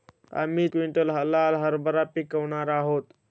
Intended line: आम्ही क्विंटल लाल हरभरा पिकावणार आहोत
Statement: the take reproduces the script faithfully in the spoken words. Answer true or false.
true